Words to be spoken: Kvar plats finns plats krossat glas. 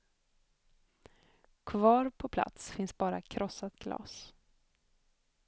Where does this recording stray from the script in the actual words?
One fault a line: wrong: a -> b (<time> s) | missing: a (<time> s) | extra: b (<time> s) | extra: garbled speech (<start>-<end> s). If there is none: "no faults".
extra: på (2.1 s)
wrong: plats -> bara (3.0 s)